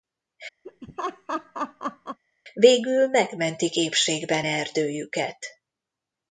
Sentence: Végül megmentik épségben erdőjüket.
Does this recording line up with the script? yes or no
yes